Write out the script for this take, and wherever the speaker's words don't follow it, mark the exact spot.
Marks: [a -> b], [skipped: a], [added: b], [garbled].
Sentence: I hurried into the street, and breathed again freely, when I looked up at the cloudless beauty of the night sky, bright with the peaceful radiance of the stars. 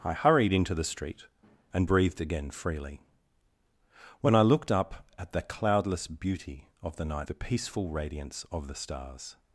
I hurried into the street, and breathed again freely, when I looked up at the cloudless beauty of the night [skipped: sky, bright with] the peaceful radiance of the stars.